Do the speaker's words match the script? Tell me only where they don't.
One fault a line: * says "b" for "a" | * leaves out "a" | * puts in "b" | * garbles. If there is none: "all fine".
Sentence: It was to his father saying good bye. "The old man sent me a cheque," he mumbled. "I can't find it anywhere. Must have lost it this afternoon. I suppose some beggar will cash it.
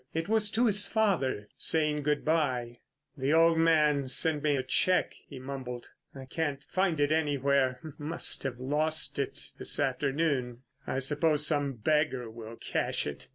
all fine